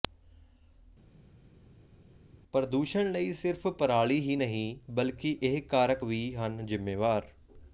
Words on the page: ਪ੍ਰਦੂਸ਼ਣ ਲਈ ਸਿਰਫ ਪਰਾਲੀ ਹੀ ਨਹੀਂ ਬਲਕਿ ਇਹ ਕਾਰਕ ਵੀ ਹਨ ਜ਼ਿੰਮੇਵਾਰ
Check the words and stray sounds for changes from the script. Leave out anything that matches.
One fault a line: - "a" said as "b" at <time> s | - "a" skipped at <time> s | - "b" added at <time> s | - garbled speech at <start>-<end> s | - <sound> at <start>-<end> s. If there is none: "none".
none